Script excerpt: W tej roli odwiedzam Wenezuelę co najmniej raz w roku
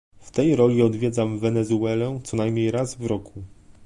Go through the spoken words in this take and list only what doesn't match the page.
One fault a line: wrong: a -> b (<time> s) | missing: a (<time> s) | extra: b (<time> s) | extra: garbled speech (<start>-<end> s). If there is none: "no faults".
no faults